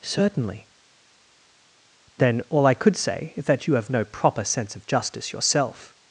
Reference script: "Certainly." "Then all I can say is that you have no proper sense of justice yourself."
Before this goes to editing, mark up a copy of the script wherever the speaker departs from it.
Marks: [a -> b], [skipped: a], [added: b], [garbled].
"Certainly." "Then all I [can -> could] say is that you have no proper sense of justice yourself."